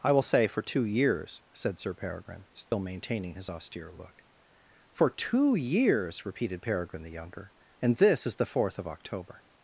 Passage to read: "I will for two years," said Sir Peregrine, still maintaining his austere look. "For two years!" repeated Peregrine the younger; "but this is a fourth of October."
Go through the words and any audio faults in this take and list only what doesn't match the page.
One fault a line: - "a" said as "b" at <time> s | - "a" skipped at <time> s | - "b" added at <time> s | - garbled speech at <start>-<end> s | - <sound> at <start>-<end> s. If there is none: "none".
- "say" added at 0.2 s
- dropout at 2.7-2.7 s
- "but" said as "and" at 7.8 s
- "a" said as "the" at 8.4 s